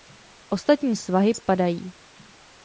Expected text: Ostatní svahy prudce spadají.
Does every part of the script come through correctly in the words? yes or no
no